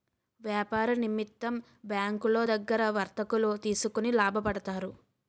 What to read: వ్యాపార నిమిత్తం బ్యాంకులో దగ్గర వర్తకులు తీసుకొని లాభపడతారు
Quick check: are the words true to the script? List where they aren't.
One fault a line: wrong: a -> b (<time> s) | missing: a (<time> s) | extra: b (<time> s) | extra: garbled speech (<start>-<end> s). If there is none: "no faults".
no faults